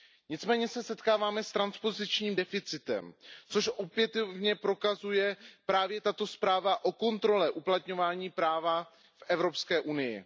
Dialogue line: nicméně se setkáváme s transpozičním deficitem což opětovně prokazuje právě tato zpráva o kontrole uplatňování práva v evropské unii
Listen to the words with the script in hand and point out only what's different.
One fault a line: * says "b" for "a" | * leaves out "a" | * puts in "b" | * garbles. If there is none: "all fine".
all fine